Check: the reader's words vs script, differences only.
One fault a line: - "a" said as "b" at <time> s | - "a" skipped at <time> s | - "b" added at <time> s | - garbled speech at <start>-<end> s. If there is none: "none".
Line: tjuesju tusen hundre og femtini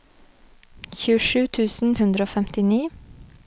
none